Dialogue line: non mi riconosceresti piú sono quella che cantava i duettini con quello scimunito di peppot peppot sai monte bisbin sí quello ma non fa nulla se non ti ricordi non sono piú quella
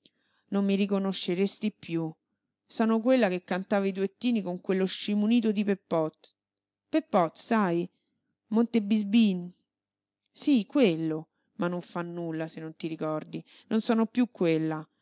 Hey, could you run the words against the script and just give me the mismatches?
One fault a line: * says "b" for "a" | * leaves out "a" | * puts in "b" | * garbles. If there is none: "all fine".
all fine